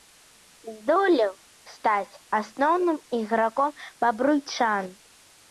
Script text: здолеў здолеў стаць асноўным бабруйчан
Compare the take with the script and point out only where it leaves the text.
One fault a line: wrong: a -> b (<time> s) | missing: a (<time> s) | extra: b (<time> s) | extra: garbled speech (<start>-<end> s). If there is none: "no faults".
missing: здолеў (1.3 s)
extra: іграком (3.2 s)